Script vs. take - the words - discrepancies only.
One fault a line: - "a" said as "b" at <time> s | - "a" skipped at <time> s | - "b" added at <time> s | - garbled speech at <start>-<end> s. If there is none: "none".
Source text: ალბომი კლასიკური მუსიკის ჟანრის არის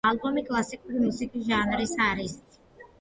none